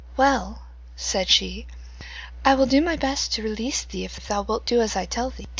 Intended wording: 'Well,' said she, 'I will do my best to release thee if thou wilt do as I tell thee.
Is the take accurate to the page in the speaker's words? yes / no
no